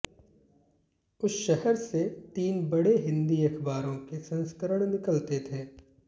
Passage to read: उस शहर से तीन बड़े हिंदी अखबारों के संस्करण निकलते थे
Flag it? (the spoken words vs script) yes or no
no